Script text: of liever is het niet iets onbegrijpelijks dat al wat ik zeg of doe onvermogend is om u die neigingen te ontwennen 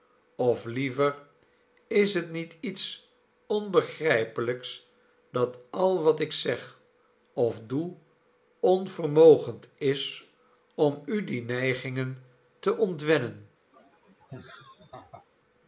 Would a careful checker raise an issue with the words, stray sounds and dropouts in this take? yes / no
yes